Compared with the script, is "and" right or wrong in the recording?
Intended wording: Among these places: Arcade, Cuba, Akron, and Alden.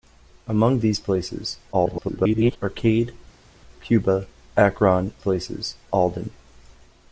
wrong